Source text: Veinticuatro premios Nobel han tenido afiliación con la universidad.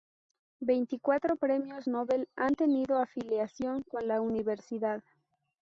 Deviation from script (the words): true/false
false